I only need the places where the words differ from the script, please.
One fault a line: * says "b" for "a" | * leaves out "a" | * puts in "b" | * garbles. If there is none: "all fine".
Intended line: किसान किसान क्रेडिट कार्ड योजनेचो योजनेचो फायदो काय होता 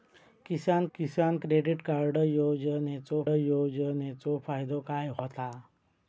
all fine